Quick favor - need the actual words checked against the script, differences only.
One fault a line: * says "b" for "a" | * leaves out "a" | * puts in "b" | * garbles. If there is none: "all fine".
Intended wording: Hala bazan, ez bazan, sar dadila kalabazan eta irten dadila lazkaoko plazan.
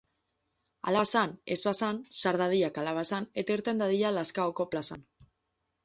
all fine